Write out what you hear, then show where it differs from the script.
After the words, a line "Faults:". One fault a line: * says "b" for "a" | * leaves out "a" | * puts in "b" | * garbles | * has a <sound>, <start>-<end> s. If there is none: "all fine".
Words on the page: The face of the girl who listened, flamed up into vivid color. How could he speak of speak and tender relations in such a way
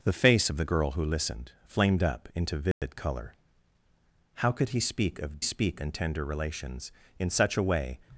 The face of the girl who listened, flamed up into vivid color. How could he speak of speak and tender relations in such a way
Faults:
* has a dropout, 2.7-2.8 s